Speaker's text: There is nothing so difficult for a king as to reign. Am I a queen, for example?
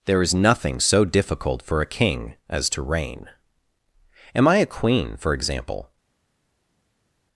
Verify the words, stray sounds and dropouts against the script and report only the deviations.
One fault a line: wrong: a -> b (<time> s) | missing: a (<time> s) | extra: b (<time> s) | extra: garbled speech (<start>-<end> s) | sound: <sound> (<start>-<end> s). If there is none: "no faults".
no faults